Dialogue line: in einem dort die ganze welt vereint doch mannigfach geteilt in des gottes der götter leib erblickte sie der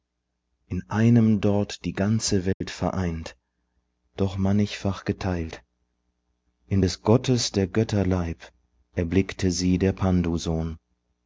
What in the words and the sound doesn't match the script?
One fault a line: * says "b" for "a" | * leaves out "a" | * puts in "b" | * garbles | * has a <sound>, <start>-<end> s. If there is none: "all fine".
* has a dropout, 2.5-2.6 s